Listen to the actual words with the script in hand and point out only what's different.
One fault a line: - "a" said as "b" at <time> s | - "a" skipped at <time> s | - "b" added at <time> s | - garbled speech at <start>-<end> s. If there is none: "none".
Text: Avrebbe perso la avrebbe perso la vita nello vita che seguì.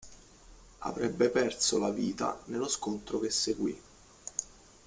- "avrebbe perso la" skipped at 1.9 s
- "vita" said as "scontro" at 2.7 s